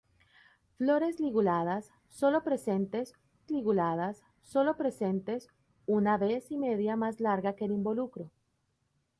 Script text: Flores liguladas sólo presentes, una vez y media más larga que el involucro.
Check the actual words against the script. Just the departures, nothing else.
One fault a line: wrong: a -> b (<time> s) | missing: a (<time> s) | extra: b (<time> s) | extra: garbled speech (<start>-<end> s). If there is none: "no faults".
extra: liguladas sólo presentes (3.5 s)